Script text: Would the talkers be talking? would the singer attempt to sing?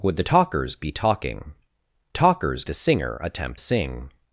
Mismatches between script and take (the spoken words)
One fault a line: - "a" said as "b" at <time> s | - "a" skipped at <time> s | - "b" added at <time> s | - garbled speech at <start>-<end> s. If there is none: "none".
- "would" said as "talkers" at 2.1 s
- "to" skipped at 3.6 s